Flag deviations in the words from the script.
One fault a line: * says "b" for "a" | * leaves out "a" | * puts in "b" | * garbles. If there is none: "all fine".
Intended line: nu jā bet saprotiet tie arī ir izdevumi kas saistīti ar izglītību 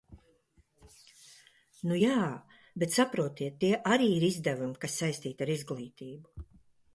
all fine